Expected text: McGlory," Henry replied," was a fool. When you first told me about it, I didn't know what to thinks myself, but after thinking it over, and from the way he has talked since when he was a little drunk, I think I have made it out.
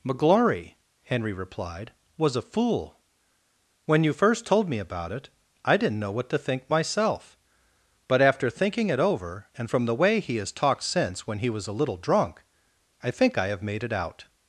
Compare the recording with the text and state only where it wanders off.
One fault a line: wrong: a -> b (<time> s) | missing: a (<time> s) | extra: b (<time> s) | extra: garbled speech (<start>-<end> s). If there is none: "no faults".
wrong: thinks -> think (6.4 s)